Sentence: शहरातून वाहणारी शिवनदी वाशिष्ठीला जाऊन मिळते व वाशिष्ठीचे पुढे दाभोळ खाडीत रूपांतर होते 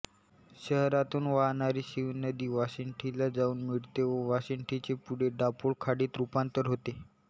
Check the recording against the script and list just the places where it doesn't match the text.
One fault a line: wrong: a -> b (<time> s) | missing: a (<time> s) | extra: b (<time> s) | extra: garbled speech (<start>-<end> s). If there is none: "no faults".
no faults